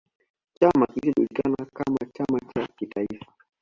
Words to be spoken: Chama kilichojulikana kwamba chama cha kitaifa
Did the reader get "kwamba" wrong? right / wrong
wrong